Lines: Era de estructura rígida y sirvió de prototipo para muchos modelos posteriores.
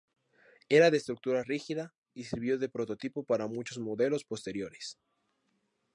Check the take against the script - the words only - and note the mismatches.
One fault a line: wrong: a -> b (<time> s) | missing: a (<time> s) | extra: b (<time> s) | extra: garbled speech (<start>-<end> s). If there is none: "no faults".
no faults